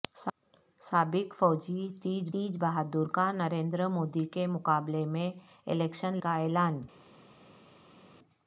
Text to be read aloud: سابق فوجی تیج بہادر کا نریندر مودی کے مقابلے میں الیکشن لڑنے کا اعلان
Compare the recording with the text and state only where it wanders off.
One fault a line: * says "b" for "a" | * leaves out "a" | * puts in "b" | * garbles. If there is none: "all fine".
* puts in "تیج"
* leaves out "لڑنے"